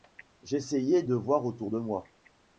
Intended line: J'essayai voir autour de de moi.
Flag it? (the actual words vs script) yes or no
yes